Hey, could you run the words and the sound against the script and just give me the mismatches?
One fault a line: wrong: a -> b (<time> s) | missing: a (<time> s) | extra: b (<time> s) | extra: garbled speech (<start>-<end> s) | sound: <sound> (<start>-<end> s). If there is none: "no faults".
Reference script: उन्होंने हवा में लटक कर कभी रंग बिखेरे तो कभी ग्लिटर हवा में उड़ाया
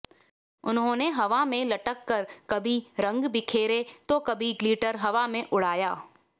no faults